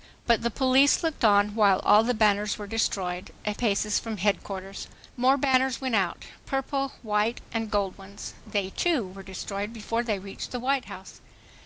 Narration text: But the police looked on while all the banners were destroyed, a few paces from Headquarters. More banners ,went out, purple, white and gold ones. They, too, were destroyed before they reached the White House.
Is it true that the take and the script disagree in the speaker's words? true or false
true